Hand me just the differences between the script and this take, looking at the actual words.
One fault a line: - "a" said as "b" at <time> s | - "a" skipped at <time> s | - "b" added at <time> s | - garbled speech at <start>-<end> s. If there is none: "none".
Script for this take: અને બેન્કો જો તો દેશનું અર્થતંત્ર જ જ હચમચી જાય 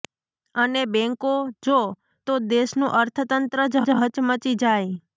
none